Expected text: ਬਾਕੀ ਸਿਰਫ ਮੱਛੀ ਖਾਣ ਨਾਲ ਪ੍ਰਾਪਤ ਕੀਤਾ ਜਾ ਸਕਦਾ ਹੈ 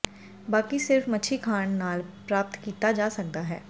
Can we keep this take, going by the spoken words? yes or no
yes